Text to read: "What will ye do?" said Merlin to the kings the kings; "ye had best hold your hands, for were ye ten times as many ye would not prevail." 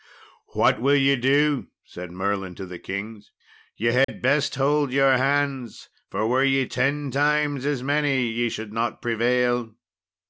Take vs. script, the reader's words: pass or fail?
fail